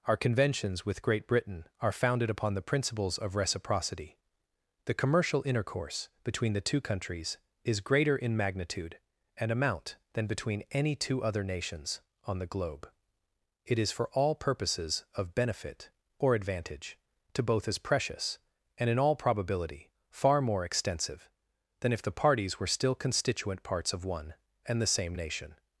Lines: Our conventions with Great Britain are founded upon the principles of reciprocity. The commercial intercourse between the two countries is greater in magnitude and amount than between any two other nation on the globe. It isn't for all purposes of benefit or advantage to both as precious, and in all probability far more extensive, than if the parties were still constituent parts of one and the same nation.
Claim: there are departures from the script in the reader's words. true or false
true